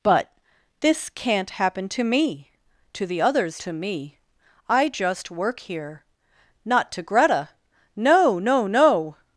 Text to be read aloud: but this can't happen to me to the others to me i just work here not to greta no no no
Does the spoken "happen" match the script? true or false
true